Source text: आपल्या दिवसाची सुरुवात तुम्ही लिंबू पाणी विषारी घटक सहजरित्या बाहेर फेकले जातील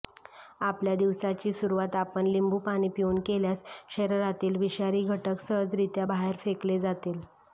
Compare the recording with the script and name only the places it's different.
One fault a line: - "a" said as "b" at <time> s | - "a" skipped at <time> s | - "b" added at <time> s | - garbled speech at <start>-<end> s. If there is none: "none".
- "तुम्ही" said as "आपण" at 1.9 s
- "पिऊन केल्यास शरीरातील" added at 3.0 s